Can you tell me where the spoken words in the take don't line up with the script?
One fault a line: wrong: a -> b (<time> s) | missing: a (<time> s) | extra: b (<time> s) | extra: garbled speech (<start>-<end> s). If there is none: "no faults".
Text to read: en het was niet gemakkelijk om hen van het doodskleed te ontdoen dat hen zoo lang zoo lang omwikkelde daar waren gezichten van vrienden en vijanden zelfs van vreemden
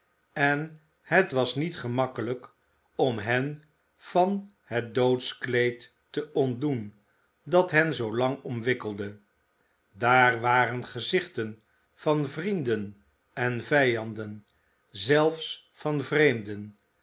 missing: zoo lang (8.4 s)